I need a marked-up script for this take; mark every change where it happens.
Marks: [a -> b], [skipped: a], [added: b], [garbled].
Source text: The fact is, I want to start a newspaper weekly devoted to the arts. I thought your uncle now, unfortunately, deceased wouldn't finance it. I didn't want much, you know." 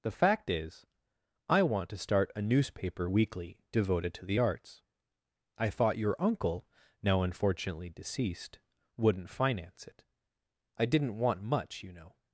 The fact is, I want to start a newspaper weekly devoted to the arts. I thought your uncle now, unfortunately, deceased wouldn't finance it. I didn't want much, you know."